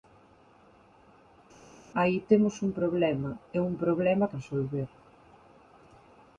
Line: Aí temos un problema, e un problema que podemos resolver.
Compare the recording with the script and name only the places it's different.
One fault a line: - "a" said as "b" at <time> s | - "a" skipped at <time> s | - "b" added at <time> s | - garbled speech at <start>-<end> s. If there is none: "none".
- "que podemos" skipped at 4.3 s